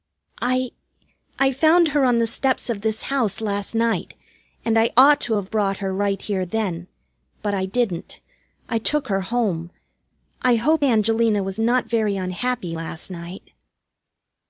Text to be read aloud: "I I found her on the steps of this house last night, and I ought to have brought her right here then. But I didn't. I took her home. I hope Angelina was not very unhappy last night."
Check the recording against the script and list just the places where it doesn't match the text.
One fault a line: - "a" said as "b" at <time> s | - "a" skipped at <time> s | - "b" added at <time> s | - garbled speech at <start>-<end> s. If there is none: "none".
none